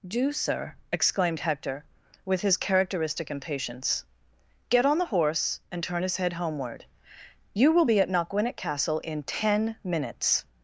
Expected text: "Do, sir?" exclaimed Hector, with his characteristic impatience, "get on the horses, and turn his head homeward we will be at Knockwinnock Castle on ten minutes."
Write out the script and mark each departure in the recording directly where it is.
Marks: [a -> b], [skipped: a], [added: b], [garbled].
"Do, sir?" exclaimed Hector, with his characteristic impatience, "get on the [horses, -> horse] and turn his head homeward [we -> you] will be at Knockwinnock Castle [on -> in] ten minutes."